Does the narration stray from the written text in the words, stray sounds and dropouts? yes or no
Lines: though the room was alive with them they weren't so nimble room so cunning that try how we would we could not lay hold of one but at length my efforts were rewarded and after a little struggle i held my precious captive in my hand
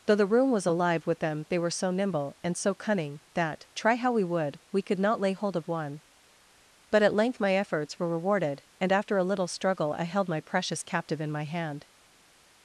yes